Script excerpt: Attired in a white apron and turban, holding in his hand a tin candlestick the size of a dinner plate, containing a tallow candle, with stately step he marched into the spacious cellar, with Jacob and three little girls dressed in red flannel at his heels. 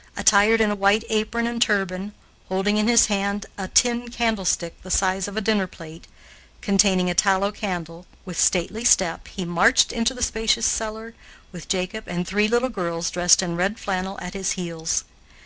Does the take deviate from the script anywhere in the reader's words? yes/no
no